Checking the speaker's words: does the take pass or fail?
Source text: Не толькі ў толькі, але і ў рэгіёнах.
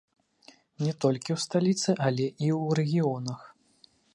fail